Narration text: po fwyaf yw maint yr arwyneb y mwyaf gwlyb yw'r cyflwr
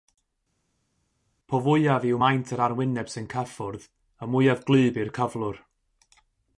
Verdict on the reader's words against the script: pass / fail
fail